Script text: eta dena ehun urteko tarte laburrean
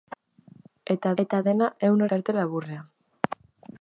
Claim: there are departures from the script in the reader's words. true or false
true